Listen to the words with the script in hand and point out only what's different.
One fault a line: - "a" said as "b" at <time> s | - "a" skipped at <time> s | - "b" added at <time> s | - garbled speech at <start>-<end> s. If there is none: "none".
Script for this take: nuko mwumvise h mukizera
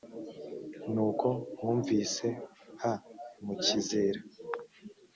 none